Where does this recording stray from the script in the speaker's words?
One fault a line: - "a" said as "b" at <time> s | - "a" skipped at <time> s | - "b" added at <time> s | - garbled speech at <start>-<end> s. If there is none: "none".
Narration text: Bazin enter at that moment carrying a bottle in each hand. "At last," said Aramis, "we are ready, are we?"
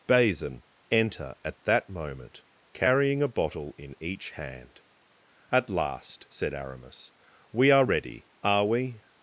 none